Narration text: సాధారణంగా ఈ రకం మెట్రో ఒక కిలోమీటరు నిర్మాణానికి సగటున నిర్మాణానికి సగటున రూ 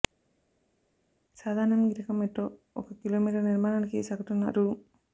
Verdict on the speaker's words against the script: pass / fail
fail